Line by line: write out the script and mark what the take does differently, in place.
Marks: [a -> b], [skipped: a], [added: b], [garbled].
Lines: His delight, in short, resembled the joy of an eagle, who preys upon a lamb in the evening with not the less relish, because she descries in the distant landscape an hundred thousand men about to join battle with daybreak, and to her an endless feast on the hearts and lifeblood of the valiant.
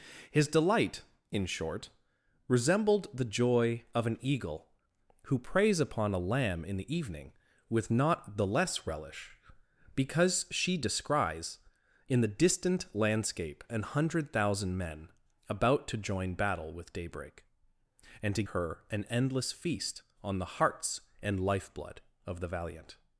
His delight, in short, resembled the joy of an eagle, who preys upon a lamb in the evening with not the less relish, because she descries in the distant landscape an hundred thousand men about to join battle with daybreak, and to her an endless feast on the hearts and lifeblood of the valiant.